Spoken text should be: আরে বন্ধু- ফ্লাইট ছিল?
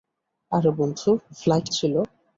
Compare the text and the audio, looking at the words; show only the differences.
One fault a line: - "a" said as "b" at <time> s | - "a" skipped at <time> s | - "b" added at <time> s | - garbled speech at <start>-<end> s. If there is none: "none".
none